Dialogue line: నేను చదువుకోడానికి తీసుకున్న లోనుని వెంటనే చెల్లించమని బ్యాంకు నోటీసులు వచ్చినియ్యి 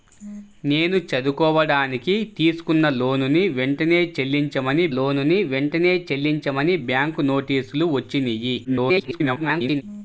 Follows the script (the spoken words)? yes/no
no